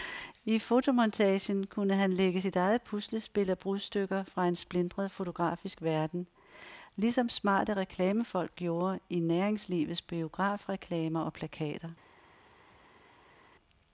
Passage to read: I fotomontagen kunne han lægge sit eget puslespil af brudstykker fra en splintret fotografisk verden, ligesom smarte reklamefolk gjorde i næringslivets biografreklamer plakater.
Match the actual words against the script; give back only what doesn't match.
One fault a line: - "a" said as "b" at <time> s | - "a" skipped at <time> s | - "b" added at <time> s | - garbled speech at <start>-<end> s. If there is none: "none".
- "og" added at 11.2 s